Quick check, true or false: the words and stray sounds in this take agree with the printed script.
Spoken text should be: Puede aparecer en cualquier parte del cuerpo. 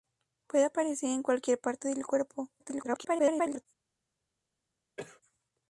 false